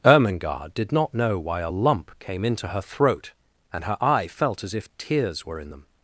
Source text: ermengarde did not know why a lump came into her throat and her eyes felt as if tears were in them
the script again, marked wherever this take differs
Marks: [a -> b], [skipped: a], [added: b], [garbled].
ermengarde did not know why a lump came into her throat and her [eyes -> eye] felt as if tears were in them